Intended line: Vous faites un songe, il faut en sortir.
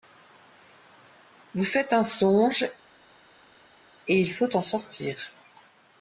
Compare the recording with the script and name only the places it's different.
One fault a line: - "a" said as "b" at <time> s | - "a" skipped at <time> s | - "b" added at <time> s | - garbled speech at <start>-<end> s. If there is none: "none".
- "et" added at 4.1 s